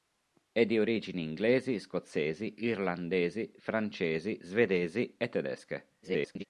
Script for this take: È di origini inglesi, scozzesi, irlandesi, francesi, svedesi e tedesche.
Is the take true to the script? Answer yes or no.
no